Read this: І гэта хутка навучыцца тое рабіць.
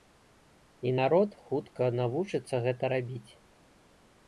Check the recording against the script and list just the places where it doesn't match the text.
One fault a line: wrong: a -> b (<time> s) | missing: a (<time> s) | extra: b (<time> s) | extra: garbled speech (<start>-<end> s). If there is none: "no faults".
wrong: гэта -> народ (1.0 s)
wrong: тое -> гэта (2.7 s)